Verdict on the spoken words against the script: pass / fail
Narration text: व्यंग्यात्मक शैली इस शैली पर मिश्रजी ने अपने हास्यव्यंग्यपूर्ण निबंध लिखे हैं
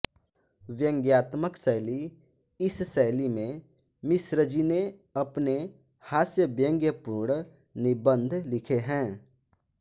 fail